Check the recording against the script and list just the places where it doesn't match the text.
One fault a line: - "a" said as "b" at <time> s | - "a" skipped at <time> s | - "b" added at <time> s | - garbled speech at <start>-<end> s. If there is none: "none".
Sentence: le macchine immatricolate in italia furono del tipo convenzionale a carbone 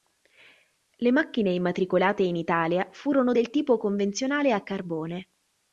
none